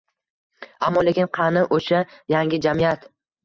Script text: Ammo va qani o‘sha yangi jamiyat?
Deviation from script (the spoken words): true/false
true